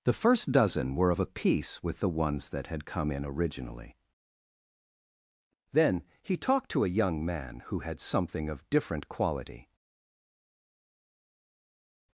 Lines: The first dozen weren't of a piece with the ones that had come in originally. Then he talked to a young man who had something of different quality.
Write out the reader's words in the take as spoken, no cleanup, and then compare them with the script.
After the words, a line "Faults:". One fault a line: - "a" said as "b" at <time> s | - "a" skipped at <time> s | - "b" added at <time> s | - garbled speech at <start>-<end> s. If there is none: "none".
The first dozen were of a piece with the ones that had come in originally. Then he talked to a young man who had something of different quality.
Faults:
- "weren't" said as "were" at 0.9 s